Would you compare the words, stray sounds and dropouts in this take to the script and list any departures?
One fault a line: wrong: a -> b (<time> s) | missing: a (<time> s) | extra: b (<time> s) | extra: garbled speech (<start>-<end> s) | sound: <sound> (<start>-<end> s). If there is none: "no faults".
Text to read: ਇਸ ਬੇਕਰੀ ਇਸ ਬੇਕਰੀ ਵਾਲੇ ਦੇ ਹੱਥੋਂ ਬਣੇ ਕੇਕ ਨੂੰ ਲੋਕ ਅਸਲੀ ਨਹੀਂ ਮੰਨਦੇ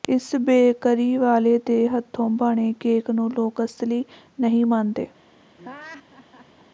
missing: ਇਸ ਬੇਕਰੀ (1.1 s)
sound: laugh (5.6-6.7 s)